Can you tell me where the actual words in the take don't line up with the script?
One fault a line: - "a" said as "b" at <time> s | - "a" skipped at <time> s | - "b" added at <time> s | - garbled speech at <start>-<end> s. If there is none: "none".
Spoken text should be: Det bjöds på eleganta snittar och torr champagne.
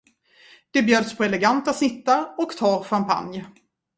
none